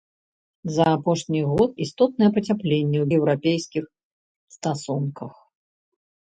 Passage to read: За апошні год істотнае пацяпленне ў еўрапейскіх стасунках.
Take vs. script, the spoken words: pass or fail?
pass